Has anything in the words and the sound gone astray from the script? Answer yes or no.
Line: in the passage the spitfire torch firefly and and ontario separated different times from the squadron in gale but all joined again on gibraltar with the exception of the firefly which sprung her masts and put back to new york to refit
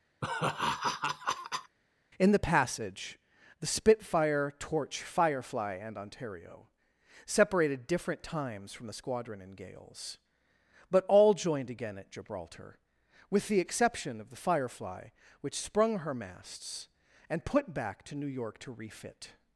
yes